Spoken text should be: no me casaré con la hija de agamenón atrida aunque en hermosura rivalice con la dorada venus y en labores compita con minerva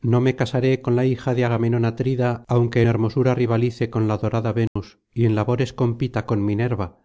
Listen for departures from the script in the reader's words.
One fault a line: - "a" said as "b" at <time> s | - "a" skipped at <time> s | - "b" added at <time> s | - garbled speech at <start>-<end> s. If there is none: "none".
- "en" skipped at 2.8 s